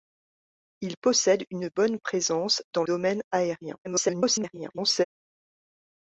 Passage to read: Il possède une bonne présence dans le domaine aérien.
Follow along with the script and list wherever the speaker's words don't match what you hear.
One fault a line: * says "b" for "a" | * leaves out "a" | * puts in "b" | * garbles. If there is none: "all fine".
* leaves out "le"
* garbles